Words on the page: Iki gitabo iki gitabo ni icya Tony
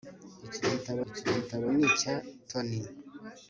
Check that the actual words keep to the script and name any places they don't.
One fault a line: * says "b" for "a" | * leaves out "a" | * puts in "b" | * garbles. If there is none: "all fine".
all fine